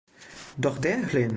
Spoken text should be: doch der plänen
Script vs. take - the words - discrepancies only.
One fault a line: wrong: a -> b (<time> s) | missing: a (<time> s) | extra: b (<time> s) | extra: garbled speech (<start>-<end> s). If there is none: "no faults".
no faults